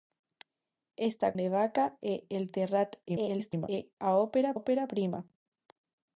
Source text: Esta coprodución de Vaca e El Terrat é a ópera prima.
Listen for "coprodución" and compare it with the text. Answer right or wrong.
wrong